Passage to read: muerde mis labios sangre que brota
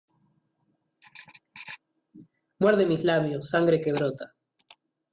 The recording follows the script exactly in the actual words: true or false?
true